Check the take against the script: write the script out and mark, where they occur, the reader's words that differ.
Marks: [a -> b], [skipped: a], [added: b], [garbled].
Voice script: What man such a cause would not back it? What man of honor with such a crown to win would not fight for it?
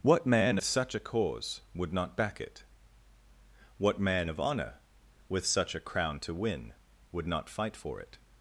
What man such a cause would not back it? What man of honor with such a crown to win would not fight for it?